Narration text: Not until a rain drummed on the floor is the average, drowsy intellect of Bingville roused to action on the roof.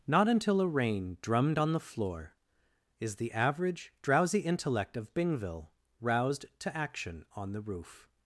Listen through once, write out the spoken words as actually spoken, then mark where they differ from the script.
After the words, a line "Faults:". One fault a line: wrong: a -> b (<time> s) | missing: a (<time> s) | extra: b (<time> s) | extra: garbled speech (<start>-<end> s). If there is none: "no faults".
Not until a rain drummed on the floor is the average, drowsy intellect of Bingville roused to action on the roof.
Faults:
no faults